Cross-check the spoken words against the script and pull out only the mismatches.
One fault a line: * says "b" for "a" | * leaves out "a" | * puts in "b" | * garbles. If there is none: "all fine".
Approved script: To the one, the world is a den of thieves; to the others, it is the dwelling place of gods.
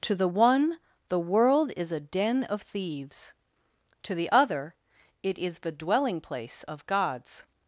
* says "other" for "others"